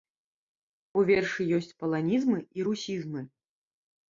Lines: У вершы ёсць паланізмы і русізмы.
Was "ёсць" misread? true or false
false